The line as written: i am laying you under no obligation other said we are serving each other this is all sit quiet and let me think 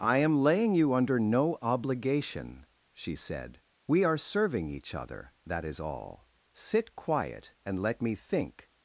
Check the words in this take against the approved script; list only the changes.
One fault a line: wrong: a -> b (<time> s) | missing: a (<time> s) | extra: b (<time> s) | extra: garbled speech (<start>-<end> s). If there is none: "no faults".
wrong: other -> she (2.9 s)
wrong: this -> that (5.4 s)